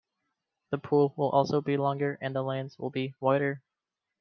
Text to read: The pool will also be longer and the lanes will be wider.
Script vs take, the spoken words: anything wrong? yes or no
no